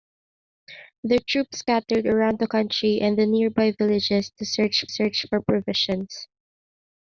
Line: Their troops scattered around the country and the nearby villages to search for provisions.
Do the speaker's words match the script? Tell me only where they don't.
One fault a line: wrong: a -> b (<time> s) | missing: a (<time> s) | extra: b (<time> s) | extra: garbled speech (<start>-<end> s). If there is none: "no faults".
extra: search (4.9 s)